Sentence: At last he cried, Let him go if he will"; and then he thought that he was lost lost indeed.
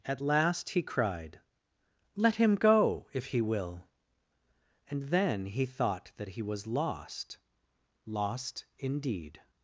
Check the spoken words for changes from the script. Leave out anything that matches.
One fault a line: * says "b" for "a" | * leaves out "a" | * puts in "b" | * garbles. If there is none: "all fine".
all fine